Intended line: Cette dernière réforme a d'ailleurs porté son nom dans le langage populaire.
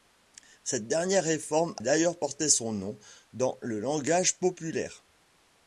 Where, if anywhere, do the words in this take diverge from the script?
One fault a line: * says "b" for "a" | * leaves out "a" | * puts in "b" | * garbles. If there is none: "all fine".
* leaves out "a"